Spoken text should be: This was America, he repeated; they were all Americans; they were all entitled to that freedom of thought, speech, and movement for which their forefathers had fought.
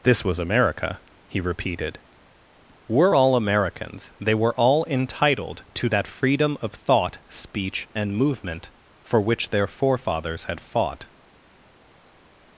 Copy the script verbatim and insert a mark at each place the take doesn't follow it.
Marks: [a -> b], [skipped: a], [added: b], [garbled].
This was America, he repeated; [skipped: they] were all Americans; they were all entitled to that freedom of thought, speech, and movement for which their forefathers had fought.